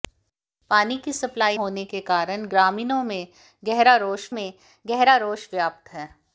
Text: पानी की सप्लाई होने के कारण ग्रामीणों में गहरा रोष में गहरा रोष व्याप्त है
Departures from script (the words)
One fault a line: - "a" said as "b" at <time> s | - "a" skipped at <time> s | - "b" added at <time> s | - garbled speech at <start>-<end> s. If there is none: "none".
none